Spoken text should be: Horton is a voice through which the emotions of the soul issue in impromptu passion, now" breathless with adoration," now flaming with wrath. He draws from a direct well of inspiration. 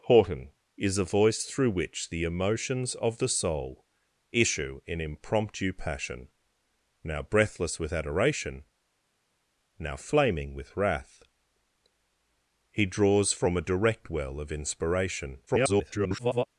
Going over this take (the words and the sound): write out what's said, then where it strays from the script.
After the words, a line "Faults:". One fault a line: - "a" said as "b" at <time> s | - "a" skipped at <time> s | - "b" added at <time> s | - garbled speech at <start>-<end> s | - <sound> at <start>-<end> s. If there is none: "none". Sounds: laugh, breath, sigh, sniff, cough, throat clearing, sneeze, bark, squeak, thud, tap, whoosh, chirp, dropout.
Horton is a voice through which the emotions of the soul issue in impromptu passion, now" breathless with adoration," now flaming with wrath. He draws from a direct well of inspiration. [garbled]
Faults:
- garbled speech at 15.5-16.5 s